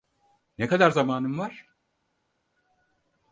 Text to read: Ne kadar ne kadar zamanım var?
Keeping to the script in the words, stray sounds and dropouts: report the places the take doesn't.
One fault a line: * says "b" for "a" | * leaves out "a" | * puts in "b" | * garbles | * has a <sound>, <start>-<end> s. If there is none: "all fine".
* leaves out "ne kadar"